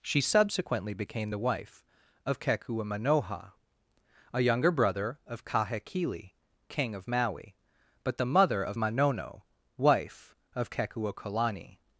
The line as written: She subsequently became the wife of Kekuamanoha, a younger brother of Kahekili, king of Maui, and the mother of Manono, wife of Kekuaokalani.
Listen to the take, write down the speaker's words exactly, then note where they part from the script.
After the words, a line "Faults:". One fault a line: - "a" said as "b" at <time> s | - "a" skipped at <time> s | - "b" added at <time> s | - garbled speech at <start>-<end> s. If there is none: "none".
She subsequently became the wife of Kekuamanoha, a younger brother of Kahekili, king of Maui, but the mother of Manono, wife of Kekuaokalani.
Faults:
- "and" said as "but" at 8.0 s